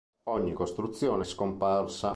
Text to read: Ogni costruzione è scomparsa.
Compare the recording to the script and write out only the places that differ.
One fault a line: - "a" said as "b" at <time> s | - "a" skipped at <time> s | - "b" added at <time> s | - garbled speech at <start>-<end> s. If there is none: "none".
none